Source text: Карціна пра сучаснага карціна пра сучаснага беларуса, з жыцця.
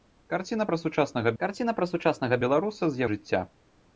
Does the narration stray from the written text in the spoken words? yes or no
no